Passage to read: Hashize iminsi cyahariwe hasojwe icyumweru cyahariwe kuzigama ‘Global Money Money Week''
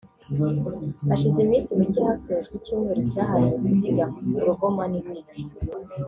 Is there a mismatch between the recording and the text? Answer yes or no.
yes